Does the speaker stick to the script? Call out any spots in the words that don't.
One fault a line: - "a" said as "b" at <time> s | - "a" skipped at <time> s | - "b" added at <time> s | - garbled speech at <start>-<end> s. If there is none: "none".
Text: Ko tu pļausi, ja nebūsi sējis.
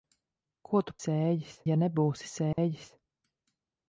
- "pļausi" said as "sējis" at 1.0 s